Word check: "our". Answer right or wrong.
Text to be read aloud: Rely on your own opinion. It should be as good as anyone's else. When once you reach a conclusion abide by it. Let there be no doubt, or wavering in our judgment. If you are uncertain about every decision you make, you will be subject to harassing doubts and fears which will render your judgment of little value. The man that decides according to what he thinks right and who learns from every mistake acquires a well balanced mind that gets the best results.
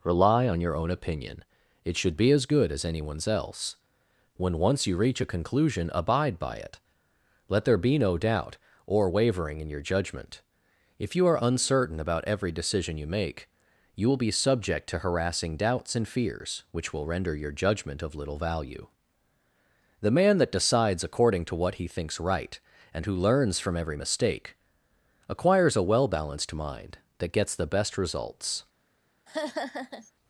wrong